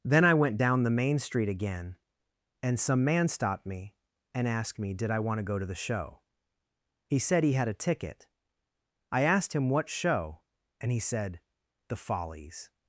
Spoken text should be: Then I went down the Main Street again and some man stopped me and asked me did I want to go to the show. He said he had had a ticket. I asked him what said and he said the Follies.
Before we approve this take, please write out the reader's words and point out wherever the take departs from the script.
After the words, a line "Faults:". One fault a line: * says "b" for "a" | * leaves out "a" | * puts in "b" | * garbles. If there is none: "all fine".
Then I went down the Main Street again and some man stopped me and asked me did I want to go to the show. He said he had a ticket. I asked him what show and he said the Follies.
Faults:
* leaves out "had"
* says "show" for "said"